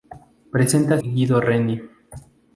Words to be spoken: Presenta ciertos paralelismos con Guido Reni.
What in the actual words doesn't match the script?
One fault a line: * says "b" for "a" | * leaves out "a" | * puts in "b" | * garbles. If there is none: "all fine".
* leaves out "ciertos paralelismos con"